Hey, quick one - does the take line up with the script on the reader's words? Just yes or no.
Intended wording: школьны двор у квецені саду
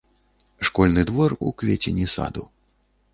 yes